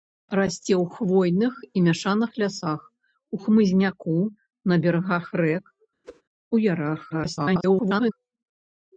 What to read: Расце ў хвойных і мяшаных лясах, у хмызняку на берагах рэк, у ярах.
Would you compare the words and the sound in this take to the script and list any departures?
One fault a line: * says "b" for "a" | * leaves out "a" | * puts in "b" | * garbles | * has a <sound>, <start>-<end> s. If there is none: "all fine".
* has a whoosh, 6.0-6.2 s
* garbles